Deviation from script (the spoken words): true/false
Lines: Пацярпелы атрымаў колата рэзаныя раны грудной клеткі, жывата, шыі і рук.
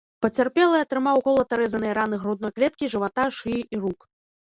false